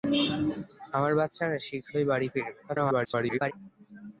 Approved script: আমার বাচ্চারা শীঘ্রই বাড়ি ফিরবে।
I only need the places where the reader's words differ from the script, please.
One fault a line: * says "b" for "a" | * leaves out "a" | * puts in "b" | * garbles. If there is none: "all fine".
* garbles